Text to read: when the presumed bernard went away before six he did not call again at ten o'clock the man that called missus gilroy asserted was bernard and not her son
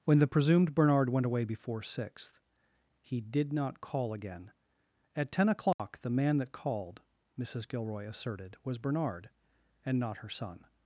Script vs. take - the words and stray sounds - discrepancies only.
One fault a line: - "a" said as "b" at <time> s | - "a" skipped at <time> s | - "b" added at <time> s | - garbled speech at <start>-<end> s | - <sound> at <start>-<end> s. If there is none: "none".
- "six" said as "sixth" at 1.8 s
- dropout at 5.7-5.8 s